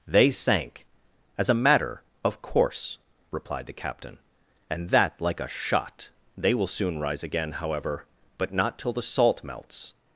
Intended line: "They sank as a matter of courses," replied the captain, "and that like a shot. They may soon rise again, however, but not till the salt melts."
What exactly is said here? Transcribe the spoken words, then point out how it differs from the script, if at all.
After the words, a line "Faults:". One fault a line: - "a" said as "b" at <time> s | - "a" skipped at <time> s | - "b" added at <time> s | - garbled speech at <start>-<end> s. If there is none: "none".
"They sank as a matter of course," replied the captain, "and that like a shot. They will soon rise again, however, but not till the salt melts."
Faults:
- "courses" said as "course" at 2.4 s
- "may" said as "will" at 6.5 s